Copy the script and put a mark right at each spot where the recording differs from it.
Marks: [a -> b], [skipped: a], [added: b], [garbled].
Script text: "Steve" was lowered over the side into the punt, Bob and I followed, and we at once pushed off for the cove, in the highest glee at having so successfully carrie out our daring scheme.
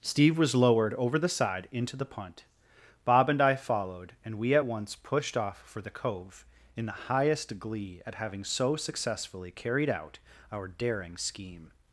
"Steve" was lowered over the side into the punt, Bob and I followed, and we at once pushed off for the cove, in the highest glee at having so successfully [carrie -> carried] out our daring scheme.